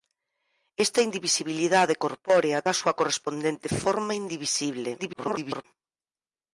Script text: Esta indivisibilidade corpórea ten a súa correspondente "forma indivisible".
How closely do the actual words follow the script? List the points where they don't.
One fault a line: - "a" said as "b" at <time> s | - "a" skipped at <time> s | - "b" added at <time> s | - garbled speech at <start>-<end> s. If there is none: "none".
- "ten" skipped at 2.6 s
- garbled speech at 5.0-5.7 s